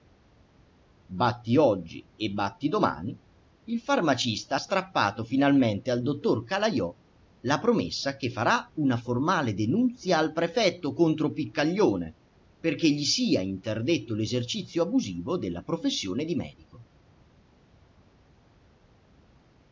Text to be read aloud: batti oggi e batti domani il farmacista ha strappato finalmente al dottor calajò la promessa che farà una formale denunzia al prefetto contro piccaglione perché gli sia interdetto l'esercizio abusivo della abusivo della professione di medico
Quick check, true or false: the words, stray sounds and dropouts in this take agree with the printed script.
false